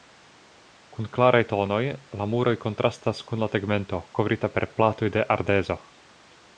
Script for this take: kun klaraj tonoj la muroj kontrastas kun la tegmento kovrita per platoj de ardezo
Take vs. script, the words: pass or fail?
pass